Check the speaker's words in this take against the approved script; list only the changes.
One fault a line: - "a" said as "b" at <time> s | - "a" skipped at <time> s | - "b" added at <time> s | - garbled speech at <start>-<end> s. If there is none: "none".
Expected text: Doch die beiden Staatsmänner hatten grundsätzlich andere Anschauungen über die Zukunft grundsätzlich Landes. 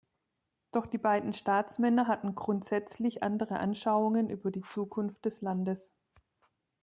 - "grundsätzlich" said as "des" at 5.3 s